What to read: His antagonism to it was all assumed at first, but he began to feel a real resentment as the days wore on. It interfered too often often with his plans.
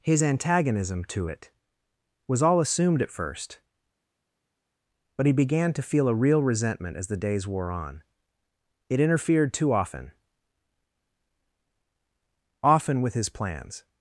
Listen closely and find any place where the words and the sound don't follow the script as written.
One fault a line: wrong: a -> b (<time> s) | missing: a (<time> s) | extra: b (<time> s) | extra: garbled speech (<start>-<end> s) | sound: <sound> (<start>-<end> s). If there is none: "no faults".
no faults